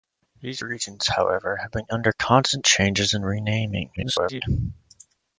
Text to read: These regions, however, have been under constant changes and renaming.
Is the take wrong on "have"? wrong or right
right